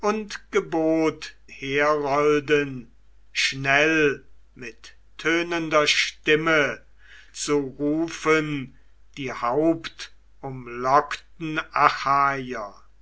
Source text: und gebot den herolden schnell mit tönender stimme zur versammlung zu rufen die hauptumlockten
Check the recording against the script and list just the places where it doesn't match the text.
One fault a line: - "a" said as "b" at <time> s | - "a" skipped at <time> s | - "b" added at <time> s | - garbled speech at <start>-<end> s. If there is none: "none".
- "den" skipped at 1.4 s
- "zur versammlung" skipped at 6.8 s